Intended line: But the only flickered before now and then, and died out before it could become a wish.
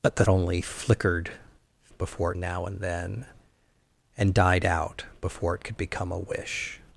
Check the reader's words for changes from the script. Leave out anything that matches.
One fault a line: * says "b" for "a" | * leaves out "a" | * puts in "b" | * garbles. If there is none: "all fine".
all fine